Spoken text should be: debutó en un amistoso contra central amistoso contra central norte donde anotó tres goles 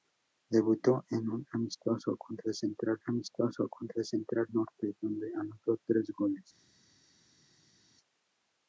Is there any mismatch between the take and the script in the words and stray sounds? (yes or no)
no